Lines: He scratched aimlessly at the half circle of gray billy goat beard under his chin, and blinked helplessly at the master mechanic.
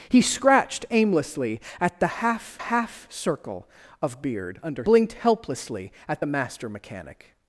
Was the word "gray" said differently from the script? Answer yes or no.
yes